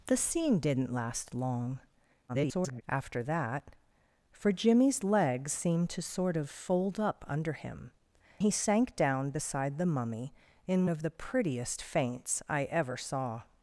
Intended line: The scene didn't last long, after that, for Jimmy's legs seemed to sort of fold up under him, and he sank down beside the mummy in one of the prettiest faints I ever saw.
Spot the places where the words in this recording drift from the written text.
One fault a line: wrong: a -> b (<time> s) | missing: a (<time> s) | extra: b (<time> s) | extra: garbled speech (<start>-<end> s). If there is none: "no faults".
extra: garbled speech (2.3-2.8 s)
missing: and (7.9 s)
missing: one (10.9 s)